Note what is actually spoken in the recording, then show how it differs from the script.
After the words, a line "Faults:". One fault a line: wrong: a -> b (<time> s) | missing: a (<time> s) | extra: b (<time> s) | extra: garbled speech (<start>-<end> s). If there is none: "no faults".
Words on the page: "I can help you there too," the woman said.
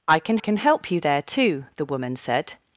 "I can can help you there too," the woman said.
Faults:
extra: can (0.4 s)